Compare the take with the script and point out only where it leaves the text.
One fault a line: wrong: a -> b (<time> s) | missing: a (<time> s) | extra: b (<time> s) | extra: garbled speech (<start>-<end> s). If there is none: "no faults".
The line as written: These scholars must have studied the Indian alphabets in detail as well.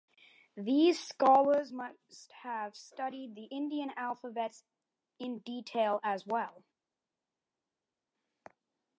no faults